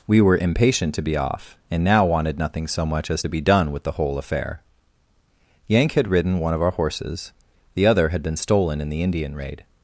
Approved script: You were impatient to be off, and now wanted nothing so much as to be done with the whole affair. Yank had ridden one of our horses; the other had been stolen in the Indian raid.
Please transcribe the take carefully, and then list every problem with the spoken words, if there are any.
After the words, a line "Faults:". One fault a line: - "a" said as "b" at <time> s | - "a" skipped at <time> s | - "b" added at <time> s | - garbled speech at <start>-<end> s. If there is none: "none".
We were impatient to be off, and now wanted nothing so much as to be done with the whole affair. Yank had ridden one of our horses; the other had been stolen in the Indian raid.
Faults:
- "You" said as "We" at 0.1 s